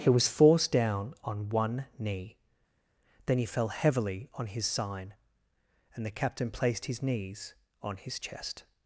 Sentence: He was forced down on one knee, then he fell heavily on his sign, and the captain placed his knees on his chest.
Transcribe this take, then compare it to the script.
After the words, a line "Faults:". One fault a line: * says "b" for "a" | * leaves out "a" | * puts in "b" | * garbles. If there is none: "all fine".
He was forced down on one knee, then he fell heavily on his sign, and the captain placed his knees on his chest.
Faults:
all fine